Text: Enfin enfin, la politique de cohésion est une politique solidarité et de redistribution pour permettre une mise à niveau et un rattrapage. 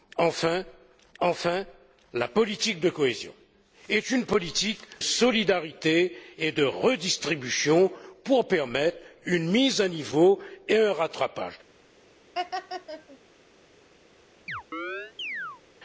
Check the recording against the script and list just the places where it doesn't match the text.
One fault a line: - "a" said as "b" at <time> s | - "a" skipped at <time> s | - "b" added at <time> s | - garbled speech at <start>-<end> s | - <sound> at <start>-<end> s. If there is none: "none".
- laugh at 12.3-13.2 s
- chirp at 14.5-15.6 s